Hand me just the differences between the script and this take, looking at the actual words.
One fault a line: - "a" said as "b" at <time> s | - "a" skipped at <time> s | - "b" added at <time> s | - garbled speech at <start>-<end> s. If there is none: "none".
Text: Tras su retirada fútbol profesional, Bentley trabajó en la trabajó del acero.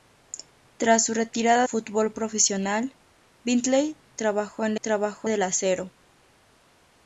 none